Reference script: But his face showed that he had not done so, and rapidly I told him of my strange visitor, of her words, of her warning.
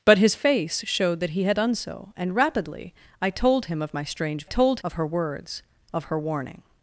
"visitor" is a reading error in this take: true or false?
true